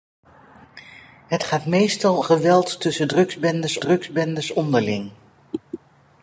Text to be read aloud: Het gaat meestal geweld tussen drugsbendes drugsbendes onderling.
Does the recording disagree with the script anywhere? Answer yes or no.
no